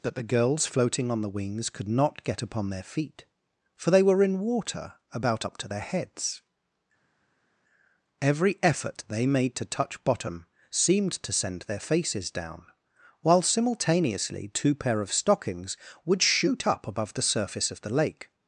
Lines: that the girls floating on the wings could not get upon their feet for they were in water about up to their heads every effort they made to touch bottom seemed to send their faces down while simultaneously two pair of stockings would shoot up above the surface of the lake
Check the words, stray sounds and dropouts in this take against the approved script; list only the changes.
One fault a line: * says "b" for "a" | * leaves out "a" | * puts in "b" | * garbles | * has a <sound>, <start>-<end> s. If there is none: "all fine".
all fine